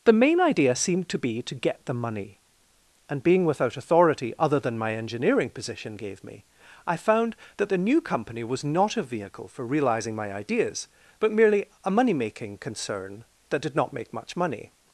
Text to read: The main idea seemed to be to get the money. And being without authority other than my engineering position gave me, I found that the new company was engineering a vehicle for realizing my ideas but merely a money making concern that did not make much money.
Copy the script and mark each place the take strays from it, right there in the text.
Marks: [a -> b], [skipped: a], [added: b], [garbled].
The main idea seemed to be to get the money. And being without authority other than my engineering position gave me, I found that the new company was [engineering -> not] a vehicle for realizing my ideas but merely a money making concern that did not make much money.